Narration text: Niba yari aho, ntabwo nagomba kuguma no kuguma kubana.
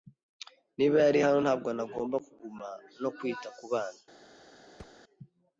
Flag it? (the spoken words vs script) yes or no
yes